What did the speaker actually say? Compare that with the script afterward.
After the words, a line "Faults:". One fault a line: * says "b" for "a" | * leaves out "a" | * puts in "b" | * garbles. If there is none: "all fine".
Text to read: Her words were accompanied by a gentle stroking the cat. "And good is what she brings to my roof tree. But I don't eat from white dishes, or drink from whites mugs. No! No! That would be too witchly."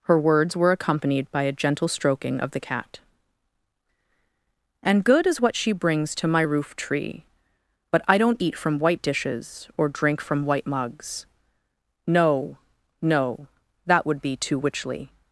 Her words were accompanied by a gentle stroking of the cat. "And good is what she brings to my roof tree. But I don't eat from white dishes, or drink from white mugs. No! No! That would be too witchly."
Faults:
* puts in "of"
* says "white" for "whites"